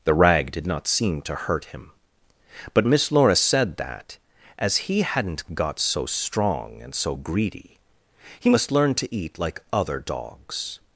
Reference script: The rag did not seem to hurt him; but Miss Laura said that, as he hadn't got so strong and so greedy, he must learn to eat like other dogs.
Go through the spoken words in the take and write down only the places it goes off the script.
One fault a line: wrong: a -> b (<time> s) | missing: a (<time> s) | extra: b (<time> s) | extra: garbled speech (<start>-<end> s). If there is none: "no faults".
no faults